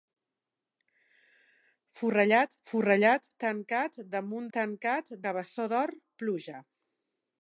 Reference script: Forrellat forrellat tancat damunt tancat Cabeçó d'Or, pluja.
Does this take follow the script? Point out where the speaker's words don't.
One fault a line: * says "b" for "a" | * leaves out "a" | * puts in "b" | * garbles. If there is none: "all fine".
all fine